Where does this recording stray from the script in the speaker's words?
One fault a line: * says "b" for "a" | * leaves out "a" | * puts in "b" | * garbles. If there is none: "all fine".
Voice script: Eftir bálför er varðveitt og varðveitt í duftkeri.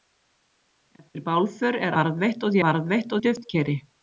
all fine